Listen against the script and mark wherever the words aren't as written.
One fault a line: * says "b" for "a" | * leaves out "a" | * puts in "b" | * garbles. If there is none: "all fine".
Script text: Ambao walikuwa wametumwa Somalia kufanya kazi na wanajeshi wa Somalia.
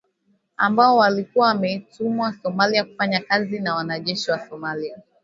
all fine